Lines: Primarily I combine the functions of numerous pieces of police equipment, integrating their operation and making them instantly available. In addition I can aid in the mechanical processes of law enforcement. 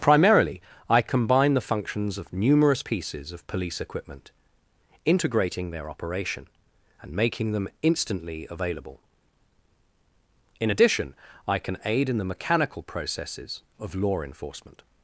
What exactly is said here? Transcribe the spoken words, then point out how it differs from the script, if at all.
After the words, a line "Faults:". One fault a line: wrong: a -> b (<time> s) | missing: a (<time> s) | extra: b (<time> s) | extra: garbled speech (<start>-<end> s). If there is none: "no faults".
Primarily I combine the functions of numerous pieces of police equipment, integrating their operation and making them instantly available. In addition I can aid in the mechanical processes of law enforcement.
Faults:
no faults